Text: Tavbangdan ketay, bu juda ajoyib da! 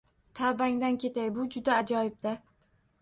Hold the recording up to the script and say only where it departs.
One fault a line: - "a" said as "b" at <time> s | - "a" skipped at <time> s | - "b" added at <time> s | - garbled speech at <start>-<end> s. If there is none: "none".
none